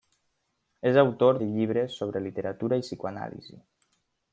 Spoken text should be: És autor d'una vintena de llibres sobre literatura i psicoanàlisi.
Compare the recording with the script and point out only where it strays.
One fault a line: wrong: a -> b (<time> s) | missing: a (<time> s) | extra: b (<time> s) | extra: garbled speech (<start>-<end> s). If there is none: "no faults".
missing: d'una vintena (1.4 s)